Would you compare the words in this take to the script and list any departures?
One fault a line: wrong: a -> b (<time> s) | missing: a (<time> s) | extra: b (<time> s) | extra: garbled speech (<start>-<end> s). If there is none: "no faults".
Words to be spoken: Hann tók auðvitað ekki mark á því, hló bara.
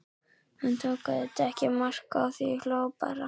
no faults